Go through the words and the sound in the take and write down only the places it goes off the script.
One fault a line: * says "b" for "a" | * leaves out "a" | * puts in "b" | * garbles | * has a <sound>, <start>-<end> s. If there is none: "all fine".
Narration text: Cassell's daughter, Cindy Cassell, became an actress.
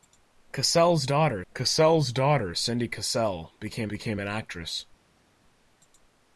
* puts in "cassell's daughter"
* puts in "became"